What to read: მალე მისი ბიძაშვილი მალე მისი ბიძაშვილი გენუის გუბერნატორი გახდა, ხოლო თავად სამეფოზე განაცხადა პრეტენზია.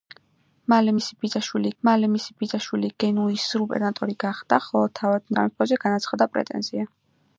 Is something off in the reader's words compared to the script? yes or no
no